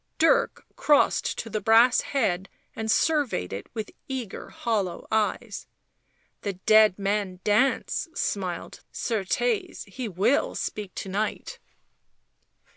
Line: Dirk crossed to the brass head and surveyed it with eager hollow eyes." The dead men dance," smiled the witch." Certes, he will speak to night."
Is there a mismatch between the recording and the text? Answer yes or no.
yes